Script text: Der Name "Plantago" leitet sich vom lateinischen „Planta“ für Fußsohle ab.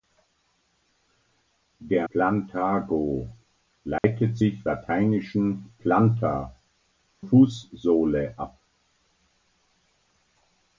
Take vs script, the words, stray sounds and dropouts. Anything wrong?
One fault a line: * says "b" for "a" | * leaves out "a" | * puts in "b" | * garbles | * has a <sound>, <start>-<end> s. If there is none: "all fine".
* leaves out "Name"
* has a dropout, 4.0-4.0 s
* leaves out "vom"
* leaves out "für"